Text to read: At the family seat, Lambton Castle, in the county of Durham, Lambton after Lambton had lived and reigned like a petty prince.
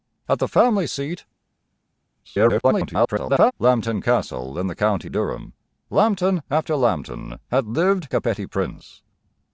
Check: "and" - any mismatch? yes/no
yes